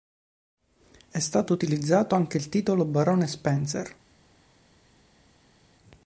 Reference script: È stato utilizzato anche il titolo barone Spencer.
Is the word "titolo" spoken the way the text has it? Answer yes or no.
yes